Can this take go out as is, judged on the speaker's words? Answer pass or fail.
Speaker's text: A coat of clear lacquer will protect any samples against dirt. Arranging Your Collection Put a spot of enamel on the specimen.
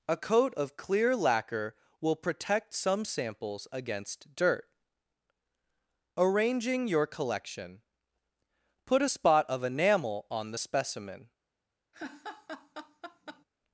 fail